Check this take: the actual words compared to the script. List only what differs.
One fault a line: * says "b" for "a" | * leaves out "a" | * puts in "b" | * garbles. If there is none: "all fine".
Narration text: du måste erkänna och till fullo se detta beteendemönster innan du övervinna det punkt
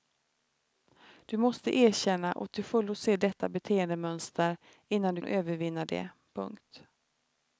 all fine